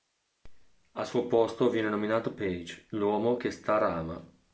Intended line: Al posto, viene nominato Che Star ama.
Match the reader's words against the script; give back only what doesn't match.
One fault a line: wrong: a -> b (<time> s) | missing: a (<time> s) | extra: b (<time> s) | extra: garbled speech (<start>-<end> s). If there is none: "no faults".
extra: suo (1.1 s)
extra: Page l'uomo (2.3 s)